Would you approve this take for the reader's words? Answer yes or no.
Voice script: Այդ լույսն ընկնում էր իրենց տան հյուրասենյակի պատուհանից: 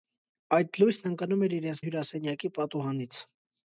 no